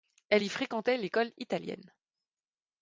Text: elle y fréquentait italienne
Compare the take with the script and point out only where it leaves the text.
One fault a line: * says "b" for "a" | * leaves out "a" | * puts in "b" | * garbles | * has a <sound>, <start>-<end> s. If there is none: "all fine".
* puts in "l'école"